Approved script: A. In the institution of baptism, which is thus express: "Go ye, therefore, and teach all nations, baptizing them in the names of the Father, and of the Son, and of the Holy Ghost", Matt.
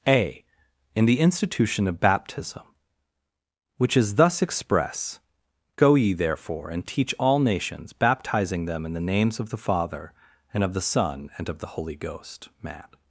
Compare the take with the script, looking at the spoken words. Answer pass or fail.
pass